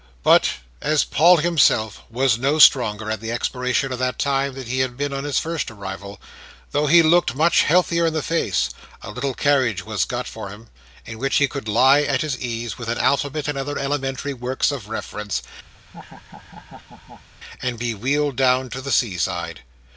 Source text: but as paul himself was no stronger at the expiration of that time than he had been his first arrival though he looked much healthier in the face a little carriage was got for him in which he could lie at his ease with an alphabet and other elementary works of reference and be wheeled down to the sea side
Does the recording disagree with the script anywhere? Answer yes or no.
yes